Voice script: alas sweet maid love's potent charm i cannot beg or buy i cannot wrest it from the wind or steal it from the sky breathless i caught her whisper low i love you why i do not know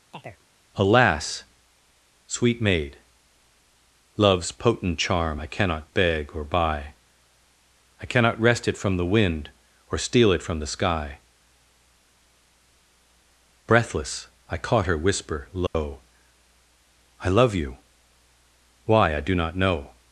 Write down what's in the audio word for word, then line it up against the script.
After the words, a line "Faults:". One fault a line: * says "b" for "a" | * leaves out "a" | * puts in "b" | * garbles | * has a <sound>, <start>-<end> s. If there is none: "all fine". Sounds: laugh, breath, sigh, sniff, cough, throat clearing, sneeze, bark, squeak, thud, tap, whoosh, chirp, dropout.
alas sweet maid love's potent charm i cannot beg or buy i cannot wrest it from the wind or steal it from the sky breathless i caught her whisper low i love you why i do not know
Faults:
* has a chirp, 0.1-0.5 s
* has a dropout, 15.7-15.7 s